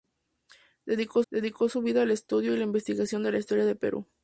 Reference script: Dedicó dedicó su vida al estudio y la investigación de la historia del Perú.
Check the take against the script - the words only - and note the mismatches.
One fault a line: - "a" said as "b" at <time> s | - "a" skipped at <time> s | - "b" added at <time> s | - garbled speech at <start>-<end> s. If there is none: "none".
none